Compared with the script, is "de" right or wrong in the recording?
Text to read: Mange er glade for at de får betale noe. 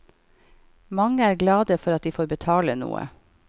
right